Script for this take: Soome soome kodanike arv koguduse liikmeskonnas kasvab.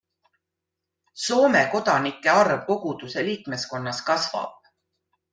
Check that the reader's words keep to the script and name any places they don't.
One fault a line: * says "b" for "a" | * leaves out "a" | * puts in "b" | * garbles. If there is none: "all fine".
* leaves out "soome"